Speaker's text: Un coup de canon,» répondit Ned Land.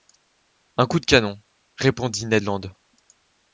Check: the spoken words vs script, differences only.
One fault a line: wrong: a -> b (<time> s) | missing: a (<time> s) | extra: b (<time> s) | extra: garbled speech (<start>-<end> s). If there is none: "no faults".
no faults